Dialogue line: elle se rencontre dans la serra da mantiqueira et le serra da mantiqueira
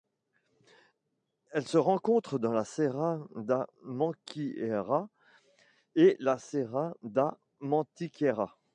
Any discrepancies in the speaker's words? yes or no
yes